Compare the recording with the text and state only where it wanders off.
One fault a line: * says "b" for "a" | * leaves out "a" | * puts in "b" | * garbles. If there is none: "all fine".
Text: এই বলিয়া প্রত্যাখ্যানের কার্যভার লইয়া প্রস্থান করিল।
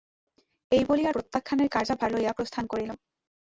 all fine